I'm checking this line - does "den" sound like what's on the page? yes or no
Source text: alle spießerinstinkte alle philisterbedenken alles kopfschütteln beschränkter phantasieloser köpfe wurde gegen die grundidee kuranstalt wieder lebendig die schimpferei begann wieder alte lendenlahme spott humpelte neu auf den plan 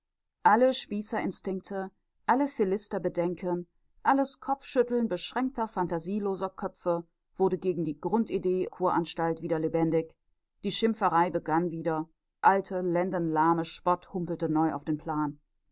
yes